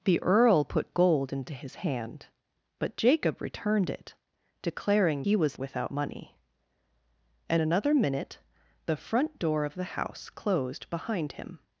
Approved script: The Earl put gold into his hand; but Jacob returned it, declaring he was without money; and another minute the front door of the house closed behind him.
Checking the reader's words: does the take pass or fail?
pass